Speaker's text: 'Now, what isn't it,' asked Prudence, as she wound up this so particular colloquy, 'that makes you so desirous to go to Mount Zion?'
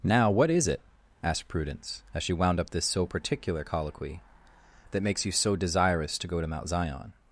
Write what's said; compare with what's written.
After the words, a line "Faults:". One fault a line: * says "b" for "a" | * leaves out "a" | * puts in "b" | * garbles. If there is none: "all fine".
'Now, what is it,' asked Prudence, as she wound up this so particular colloquy, 'that makes you so desirous to go to Mount Zion?'
Faults:
* says "is" for "isn't"